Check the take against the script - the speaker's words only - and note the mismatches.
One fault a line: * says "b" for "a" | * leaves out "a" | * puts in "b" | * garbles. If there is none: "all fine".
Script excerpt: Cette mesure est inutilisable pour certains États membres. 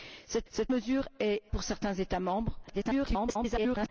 * puts in "cette"
* leaves out "inutilisable"
* garbles